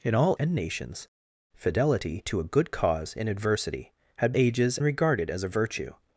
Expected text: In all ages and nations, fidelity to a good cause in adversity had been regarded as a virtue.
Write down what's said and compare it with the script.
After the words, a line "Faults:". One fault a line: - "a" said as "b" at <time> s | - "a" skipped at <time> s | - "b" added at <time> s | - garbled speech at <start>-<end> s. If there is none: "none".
In all and nations, fidelity to a good cause in adversity had ages regarded as a virtue.
Faults:
- "ages" skipped at 0.3 s
- "been" said as "ages" at 4.4 s